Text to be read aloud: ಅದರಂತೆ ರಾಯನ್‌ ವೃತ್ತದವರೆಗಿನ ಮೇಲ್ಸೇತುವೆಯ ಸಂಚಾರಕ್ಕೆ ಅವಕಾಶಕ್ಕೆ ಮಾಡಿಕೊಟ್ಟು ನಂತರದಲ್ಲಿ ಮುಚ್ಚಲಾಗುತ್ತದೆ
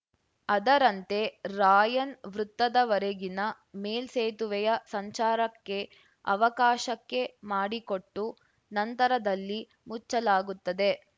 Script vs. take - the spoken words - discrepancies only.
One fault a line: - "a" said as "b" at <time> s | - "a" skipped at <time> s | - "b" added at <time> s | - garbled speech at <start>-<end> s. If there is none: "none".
none